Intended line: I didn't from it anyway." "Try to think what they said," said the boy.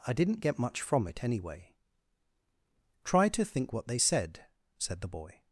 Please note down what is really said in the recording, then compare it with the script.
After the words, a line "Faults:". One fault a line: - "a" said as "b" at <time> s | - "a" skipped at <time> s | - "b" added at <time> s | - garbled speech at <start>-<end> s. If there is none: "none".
I didn't get much from it anyway." "Try to think what they said," said the boy.
Faults:
- "get much" added at 0.4 s